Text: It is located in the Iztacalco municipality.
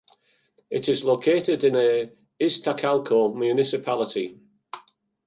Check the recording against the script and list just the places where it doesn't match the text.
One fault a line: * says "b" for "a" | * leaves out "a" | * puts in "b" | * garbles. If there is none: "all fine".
all fine